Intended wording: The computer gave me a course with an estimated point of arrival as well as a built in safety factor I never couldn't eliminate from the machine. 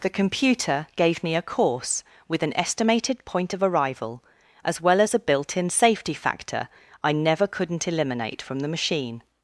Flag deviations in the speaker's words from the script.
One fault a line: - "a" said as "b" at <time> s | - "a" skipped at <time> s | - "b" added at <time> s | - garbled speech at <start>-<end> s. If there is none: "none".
none